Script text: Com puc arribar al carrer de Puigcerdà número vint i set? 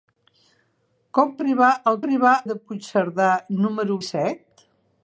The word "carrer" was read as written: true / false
false